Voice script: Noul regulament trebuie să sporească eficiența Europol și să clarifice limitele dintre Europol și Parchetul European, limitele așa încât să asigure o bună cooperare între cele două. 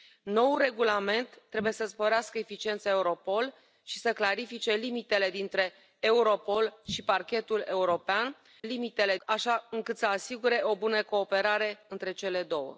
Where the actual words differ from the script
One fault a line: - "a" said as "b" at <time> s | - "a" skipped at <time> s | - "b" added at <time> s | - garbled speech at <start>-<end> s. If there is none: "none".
none